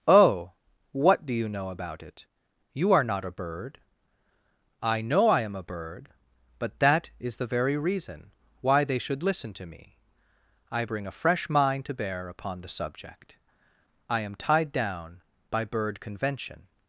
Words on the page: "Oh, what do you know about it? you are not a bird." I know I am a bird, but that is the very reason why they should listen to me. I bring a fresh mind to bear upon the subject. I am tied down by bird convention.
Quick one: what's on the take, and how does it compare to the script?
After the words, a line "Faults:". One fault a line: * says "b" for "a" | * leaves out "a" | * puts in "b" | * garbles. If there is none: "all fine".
"Oh, what do you know about it? you are not a bird." I know I am a bird, but that is the very reason why they should listen to me. I bring a fresh mind to bear upon the subject. I am tied down by bird convention.
Faults:
all fine